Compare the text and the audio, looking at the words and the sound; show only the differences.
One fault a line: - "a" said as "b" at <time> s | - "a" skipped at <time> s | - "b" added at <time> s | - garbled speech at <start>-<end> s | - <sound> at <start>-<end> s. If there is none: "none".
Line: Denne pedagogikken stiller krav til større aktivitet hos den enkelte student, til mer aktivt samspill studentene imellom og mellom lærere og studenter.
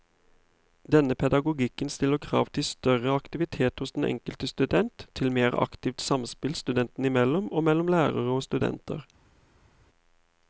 none